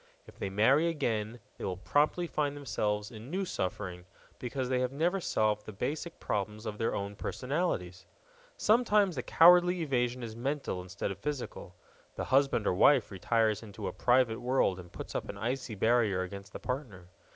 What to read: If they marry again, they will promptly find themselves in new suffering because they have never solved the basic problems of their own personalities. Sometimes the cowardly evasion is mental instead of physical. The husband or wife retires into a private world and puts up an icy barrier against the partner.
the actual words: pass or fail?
pass